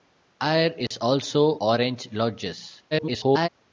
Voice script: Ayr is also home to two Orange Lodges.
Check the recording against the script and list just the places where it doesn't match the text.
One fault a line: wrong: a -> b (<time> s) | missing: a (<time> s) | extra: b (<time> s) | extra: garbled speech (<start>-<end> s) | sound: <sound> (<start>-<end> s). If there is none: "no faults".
sound: dropout (0.9-0.9 s)
missing: home to two (1.6 s)
extra: garbled speech (2.9-3.5 s)